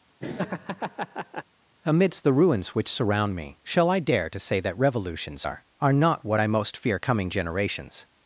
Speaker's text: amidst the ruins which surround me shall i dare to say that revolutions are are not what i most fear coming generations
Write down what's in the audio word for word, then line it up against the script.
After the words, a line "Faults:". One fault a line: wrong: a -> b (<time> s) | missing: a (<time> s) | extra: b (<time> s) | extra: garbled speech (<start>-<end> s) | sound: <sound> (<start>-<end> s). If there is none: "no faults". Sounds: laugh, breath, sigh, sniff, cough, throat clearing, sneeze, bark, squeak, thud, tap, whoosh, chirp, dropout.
amidst the ruins which surround me shall i dare to say that revolutions are are not what i most fear coming generations
Faults:
sound: laugh (0.2-1.4 s)